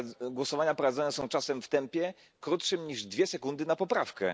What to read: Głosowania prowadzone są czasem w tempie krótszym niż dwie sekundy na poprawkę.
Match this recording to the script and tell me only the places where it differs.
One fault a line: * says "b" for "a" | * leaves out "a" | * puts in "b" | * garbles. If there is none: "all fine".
all fine